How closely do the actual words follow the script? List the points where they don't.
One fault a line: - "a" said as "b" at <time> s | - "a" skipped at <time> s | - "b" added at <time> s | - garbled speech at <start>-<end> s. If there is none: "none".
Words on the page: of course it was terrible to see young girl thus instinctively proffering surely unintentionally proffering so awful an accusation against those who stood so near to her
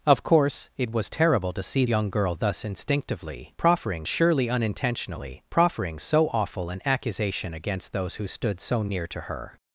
none